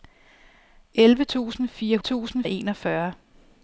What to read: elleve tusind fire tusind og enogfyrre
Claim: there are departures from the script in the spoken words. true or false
false